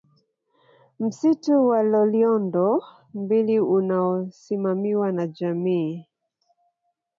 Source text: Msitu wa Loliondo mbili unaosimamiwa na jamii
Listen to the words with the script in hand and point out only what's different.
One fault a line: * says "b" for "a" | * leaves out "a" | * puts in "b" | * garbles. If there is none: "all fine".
all fine